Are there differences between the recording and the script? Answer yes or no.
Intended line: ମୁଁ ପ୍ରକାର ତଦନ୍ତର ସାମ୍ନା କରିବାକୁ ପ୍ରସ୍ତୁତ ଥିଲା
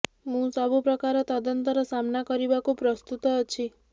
yes